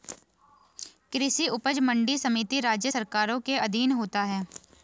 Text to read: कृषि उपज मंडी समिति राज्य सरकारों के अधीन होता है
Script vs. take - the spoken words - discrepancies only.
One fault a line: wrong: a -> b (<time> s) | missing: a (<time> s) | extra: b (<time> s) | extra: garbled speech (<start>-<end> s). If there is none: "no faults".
no faults